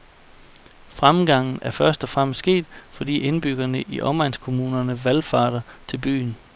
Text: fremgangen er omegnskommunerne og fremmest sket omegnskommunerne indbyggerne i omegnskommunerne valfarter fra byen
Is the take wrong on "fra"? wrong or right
wrong